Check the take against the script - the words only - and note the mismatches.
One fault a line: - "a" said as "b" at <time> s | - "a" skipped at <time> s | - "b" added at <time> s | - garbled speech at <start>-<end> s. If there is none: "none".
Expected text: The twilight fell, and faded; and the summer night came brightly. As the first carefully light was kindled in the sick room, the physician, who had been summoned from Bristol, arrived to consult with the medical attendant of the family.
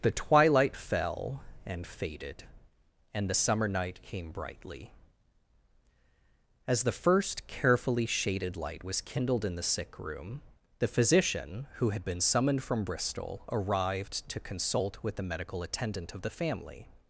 - "shaded" added at 8.0 s